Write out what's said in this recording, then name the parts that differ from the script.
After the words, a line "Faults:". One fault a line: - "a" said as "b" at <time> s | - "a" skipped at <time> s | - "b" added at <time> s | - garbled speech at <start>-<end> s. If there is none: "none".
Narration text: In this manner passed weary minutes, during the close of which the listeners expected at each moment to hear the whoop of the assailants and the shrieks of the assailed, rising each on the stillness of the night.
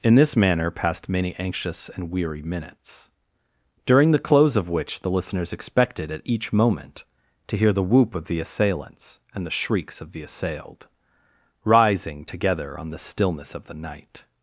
In this manner passed many anxious and weary minutes, during the close of which the listeners expected at each moment to hear the whoop of the assailants and the shrieks of the assailed, rising together on the stillness of the night.
Faults:
- "many anxious and" added at 1.1 s
- "each" said as "together" at 12.2 s